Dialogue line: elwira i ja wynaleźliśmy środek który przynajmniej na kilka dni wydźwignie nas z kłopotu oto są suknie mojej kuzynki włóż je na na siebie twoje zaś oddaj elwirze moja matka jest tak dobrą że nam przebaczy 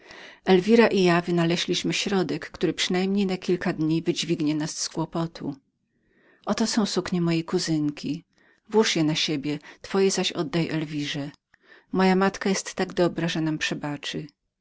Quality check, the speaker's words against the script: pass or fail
fail